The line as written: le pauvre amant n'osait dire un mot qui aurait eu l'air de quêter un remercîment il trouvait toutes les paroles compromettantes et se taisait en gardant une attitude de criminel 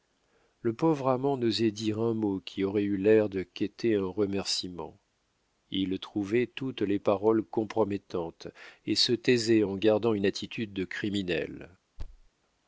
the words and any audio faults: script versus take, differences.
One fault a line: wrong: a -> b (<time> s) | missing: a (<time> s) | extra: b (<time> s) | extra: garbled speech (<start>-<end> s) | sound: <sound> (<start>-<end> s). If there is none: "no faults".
sound: thud (12.0-12.3 s)